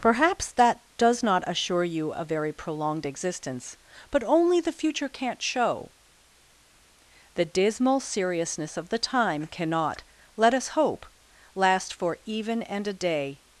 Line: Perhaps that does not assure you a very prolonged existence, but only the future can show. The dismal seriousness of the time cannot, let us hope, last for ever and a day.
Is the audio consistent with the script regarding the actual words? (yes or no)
no